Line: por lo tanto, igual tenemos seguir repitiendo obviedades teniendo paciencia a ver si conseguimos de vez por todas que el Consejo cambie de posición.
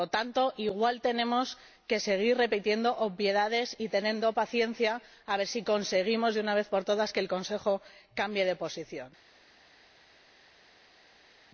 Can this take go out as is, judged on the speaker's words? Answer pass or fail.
fail